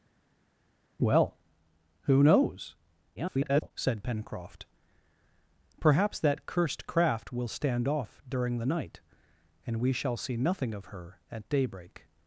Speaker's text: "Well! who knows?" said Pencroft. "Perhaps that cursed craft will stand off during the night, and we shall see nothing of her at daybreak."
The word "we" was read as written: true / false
true